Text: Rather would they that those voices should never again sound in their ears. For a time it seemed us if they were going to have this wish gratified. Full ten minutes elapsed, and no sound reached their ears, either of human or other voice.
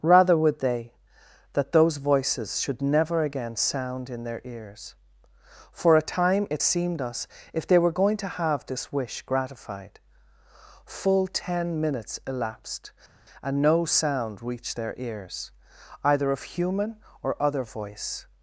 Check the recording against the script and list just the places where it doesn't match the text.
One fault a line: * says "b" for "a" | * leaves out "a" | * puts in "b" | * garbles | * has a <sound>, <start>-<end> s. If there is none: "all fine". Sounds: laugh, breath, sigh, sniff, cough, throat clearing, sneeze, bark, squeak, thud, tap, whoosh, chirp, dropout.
all fine